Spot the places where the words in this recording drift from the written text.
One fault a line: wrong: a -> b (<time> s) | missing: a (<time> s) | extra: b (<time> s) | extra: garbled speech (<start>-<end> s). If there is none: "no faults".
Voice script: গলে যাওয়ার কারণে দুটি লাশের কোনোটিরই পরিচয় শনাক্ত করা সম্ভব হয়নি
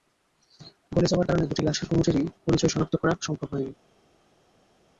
no faults